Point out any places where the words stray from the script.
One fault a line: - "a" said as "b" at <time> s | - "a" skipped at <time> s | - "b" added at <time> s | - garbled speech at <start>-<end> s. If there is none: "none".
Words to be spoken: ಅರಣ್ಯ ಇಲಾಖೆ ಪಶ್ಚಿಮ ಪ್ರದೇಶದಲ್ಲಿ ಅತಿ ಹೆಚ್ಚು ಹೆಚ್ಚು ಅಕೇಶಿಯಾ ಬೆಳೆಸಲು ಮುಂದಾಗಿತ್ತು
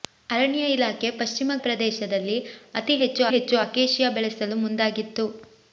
none